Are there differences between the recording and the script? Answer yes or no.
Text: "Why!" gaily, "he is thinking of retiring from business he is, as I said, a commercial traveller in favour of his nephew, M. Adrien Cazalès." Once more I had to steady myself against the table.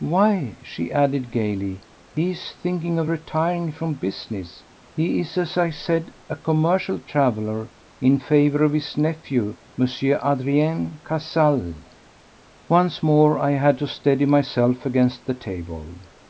yes